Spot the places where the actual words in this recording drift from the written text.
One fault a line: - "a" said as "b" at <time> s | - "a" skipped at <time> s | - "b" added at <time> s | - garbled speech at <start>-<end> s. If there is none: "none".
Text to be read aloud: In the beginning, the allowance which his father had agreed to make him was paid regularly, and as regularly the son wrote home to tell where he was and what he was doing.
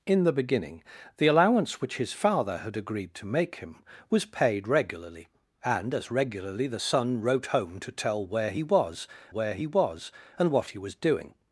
- "where he was" added at 9.3 s